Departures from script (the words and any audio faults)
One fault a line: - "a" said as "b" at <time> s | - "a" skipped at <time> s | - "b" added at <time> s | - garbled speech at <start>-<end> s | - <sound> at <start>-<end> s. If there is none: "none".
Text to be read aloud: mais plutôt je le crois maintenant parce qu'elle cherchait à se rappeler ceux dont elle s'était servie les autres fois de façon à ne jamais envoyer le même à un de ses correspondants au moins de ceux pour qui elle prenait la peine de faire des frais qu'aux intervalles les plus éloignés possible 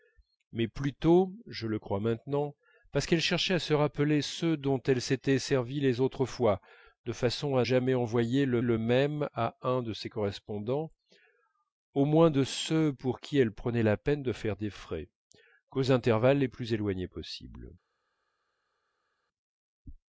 - "ne" skipped at 7.7 s
- "le" added at 8.6 s